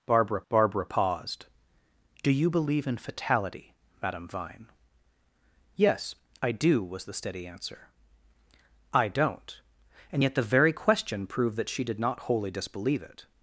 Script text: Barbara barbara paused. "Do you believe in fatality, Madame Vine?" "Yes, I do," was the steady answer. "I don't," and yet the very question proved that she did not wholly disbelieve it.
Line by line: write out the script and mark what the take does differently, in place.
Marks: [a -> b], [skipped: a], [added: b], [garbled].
Barbara barbara paused. "Do you believe in fatality, Madame Vine?" "Yes, I do," was the steady answer. "I don't," and yet the very question proved that she did not wholly disbelieve it.